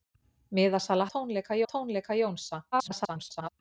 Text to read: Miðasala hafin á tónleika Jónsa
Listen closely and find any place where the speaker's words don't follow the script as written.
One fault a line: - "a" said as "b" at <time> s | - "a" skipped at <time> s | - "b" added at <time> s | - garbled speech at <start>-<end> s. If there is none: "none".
- "hafin" said as "tónleika" at 1.1 s
- garbled speech at 2.7-3.5 s